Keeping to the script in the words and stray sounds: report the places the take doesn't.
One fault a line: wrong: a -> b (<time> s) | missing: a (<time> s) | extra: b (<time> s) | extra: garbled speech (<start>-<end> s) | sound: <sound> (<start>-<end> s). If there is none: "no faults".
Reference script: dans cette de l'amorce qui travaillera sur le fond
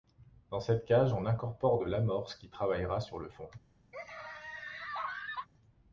extra: cage on incorpore (0.8 s)
sound: laugh (3.9-5.5 s)